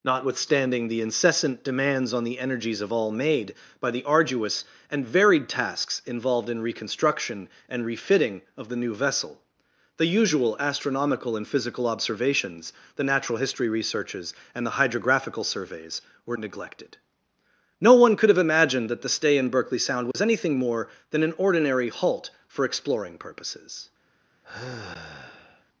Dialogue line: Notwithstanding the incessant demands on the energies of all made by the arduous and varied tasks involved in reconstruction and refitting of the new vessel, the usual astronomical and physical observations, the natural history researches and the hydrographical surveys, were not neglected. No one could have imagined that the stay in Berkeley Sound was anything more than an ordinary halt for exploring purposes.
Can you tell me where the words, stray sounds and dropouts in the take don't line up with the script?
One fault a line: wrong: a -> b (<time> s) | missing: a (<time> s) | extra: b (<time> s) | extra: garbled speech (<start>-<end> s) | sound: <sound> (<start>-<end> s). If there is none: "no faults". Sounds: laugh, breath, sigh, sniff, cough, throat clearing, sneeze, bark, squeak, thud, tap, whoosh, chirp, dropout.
missing: not (16.4 s)
sound: dropout (20.1-20.1 s)
sound: sigh (24.4-25.6 s)